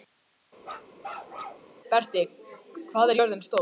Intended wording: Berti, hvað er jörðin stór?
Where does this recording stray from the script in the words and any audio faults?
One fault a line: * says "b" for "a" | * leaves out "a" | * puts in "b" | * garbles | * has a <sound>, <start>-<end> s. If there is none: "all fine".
* has a bark, 0.6-1.7 s